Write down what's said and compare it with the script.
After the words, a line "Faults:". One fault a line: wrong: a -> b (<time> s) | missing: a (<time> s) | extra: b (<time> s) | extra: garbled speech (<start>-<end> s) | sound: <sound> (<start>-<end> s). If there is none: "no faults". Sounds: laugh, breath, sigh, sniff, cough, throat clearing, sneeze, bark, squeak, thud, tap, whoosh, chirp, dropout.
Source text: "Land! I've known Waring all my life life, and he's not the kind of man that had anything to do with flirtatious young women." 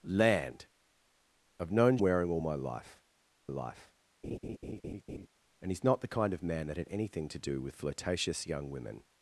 "Land! I've known Waring all my life life, and he's not the kind of man that had anything to do with flirtatious young women."
Faults:
sound: laugh (4.2-5.3 s)